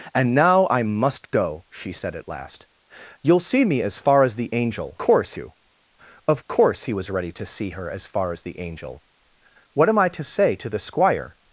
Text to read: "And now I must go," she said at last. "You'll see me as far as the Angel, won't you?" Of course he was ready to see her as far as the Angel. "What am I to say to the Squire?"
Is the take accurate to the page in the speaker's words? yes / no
no